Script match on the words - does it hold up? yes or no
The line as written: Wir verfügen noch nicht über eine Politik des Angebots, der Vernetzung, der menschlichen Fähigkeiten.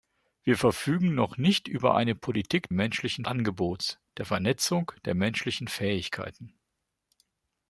no